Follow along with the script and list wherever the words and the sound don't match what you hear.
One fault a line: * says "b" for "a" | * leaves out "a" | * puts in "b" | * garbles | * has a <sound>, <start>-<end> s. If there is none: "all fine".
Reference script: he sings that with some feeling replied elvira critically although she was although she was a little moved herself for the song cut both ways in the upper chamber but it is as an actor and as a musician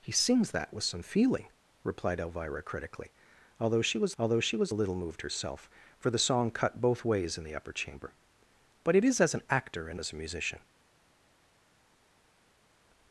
all fine